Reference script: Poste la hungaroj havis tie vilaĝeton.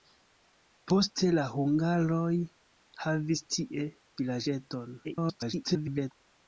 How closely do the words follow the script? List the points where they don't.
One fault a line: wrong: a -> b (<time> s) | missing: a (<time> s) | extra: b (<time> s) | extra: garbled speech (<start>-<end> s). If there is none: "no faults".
extra: garbled speech (5.0-6.1 s)